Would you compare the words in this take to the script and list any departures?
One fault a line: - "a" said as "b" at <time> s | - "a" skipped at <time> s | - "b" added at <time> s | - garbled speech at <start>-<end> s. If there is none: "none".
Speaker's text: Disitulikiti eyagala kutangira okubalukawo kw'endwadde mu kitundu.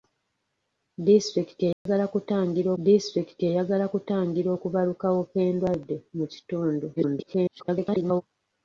- "disitulikiti eyagala kutangira" added at 2.8 s
- garbled speech at 7.0-8.2 s